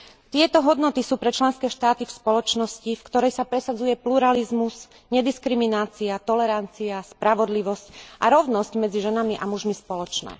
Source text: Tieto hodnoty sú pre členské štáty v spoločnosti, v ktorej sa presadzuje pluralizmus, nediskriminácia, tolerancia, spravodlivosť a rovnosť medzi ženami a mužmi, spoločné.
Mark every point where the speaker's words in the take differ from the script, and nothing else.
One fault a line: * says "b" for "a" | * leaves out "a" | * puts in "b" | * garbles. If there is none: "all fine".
all fine